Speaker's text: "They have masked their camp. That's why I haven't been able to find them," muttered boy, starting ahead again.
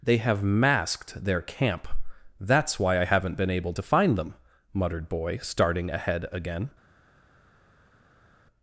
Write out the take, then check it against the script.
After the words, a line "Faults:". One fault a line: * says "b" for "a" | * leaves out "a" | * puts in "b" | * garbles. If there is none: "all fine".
"They have masked their camp. That's why I haven't been able to find them," muttered boy, starting ahead again.
Faults:
all fine